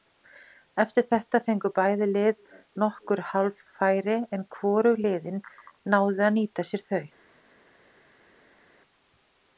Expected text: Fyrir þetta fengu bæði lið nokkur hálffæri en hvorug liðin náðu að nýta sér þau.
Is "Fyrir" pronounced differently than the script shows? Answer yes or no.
yes